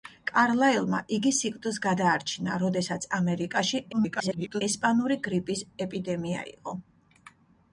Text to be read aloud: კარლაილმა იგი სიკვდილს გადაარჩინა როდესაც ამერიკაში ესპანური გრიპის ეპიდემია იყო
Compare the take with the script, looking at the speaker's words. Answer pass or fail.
fail